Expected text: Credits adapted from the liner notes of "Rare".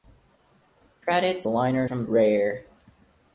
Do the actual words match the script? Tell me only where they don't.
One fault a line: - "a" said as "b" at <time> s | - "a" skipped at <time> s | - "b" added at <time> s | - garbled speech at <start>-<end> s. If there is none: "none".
- "adapted" said as "liner" at 1.5 s
- "liner notes of" skipped at 2.1 s